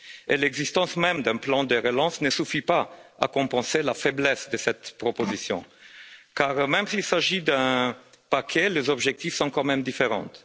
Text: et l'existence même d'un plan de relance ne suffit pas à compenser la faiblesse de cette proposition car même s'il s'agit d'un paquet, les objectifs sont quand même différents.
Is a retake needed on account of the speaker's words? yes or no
no